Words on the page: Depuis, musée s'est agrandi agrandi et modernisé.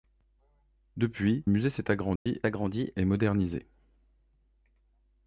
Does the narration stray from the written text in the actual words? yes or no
no